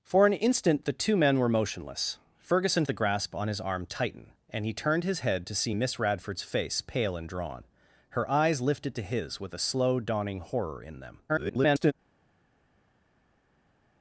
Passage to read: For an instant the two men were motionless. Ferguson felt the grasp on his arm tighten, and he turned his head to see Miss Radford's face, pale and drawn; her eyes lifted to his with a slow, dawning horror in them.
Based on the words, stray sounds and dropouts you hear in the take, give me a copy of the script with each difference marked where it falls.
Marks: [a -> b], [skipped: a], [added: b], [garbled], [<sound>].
For an instant the two men were motionless. Ferguson [skipped: felt] the grasp on his arm tighten, and he turned his head to see Miss Radford's face, pale and drawn; her eyes lifted to his with a slow, dawning horror in them. [garbled]